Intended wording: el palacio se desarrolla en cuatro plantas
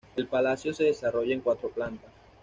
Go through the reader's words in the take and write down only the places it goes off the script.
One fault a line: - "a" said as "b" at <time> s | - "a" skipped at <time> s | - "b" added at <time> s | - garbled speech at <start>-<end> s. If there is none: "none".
none